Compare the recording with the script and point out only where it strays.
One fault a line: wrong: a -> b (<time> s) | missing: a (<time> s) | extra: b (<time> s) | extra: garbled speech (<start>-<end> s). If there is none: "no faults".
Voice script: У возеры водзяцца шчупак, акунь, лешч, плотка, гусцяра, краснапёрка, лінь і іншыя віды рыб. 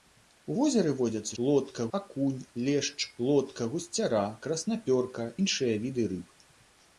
wrong: шчупак -> плотка (1.4 s)
missing: лінь і (5.3 s)